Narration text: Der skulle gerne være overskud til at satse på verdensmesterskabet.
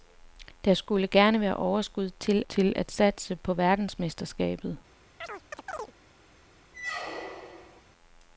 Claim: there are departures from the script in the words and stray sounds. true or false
true